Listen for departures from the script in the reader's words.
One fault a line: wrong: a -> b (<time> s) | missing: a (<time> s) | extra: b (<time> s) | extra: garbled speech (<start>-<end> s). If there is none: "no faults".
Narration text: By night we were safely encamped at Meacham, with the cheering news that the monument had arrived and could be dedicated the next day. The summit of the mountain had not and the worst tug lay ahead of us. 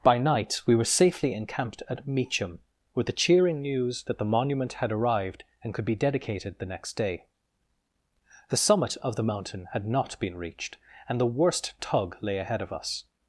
extra: been reached (10.2 s)